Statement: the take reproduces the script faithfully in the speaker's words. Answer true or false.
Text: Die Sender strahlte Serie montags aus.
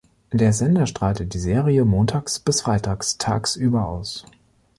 false